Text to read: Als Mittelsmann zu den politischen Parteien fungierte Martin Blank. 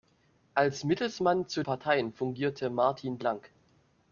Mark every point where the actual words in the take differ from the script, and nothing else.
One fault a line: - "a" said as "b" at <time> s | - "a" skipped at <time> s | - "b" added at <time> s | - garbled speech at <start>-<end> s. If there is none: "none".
- "den politischen" skipped at 1.6 s